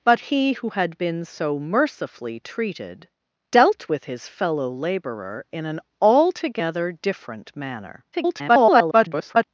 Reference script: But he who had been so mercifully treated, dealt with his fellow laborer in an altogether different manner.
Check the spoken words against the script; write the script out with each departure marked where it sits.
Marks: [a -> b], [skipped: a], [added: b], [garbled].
But he who had been so mercifully treated, dealt with his fellow laborer in an altogether different manner. [garbled]